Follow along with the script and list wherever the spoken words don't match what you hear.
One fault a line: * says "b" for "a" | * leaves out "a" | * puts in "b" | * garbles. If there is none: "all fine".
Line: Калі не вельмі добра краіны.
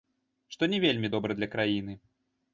* says "Што" for "Калі"
* puts in "для"